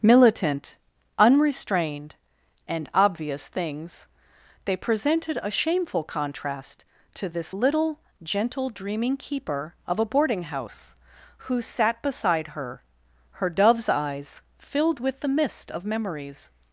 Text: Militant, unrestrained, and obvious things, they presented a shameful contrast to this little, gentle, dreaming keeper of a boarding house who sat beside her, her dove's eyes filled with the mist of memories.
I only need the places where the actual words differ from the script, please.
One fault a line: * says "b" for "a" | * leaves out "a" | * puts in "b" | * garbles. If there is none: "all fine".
all fine